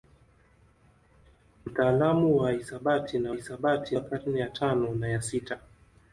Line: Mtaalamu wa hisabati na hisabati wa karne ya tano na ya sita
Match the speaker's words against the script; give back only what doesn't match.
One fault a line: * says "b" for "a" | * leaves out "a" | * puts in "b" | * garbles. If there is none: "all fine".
all fine